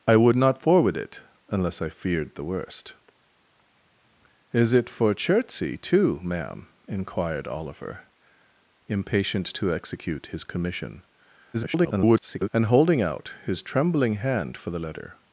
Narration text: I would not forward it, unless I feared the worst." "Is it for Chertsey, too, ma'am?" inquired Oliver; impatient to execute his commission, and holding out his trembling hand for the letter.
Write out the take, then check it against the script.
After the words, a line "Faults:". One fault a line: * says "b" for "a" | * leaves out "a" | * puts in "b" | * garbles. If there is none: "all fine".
I would not forward it, unless I feared the worst." "Is it for Chertsey, too, ma'am?" inquired Oliver; impatient to execute his commission, [garbled] and holding out his trembling hand for the letter.
Faults:
* garbles